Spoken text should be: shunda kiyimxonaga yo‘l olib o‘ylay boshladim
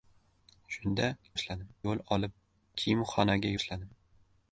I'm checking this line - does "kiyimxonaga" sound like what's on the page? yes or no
no